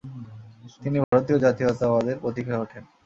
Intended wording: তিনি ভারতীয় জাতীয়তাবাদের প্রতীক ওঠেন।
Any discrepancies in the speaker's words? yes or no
yes